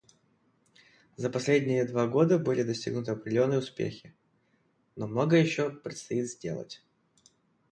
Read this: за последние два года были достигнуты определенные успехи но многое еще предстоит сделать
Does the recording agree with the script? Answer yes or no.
yes